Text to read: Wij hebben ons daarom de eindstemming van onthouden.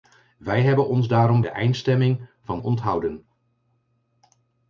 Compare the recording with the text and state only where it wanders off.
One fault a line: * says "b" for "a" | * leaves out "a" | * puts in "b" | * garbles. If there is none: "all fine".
all fine